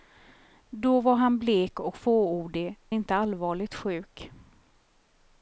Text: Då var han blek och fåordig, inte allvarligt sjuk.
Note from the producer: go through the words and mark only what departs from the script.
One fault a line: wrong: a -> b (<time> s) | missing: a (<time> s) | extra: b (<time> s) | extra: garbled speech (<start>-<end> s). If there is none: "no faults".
no faults